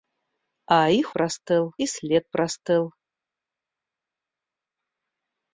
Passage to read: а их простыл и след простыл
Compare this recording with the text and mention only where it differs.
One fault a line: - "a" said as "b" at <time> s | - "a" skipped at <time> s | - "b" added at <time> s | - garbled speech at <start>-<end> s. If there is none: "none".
none